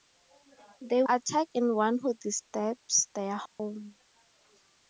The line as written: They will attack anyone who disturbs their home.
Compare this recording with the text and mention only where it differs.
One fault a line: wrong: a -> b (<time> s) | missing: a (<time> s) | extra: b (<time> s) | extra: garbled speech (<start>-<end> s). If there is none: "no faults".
missing: will (1.0 s)